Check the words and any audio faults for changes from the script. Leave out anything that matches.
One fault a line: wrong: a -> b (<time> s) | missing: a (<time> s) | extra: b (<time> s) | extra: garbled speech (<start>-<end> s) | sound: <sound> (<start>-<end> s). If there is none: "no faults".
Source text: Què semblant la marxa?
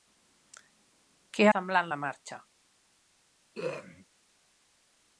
sound: throat clearing (3.5-4.1 s)